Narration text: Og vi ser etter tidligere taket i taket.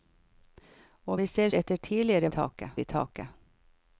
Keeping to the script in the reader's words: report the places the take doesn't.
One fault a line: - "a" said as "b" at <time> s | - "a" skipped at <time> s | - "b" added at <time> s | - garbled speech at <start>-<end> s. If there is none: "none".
none